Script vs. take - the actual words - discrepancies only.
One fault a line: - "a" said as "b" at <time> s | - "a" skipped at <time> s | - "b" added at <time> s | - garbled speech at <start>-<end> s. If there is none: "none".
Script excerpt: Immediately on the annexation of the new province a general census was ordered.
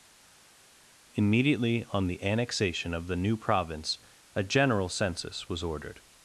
none